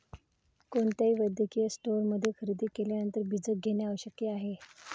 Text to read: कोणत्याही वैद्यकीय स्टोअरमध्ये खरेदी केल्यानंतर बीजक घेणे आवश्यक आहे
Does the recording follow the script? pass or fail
pass